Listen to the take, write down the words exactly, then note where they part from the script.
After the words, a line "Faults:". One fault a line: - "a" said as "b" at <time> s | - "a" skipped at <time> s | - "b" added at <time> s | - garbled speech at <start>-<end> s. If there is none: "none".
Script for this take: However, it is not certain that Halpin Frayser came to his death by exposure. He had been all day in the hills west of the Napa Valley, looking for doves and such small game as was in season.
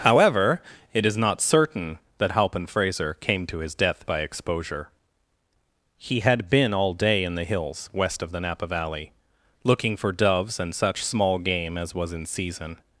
However, it is not certain that Halpin Frayser came to his death by exposure. He had been all day in the hills west of the Napa Valley, looking for doves and such small game as was in season.
Faults:
none